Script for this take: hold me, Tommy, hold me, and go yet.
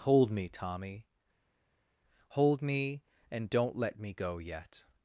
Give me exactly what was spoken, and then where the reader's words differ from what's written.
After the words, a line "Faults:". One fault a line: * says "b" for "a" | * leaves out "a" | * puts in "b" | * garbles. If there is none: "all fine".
hold me, Tommy, hold me, and don't let me go yet.
Faults:
* puts in "don't let me"